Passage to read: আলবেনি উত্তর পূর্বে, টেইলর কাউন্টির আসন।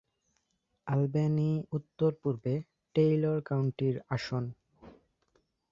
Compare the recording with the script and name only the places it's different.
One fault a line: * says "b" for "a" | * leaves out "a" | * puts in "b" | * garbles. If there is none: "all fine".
all fine